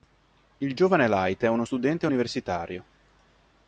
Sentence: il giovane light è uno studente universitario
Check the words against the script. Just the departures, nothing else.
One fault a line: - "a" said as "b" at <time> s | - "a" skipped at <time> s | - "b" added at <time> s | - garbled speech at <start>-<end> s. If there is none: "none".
none